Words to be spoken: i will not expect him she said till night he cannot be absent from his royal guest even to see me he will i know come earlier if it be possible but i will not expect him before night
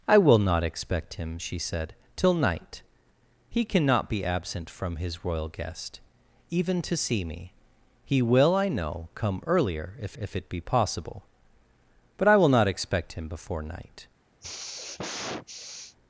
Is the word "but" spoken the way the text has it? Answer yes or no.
yes